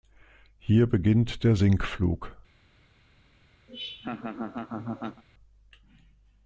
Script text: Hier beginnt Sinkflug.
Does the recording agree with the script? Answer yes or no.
no